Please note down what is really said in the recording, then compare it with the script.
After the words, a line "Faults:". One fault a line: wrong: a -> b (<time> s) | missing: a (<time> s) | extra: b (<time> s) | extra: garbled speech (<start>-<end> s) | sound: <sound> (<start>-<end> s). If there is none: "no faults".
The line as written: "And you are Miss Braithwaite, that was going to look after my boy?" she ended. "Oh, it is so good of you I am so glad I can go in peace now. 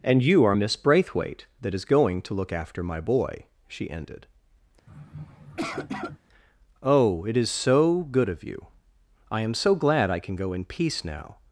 "And you are Miss Braithwaite, that is going to look after my boy?" she ended. "Oh, it is so good of you I am so glad I can go in peace now.
Faults:
wrong: was -> is (1.7 s)
sound: sniff (4.9-6.2 s)